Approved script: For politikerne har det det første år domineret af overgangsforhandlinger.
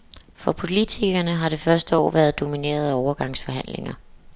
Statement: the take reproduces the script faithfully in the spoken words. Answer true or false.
false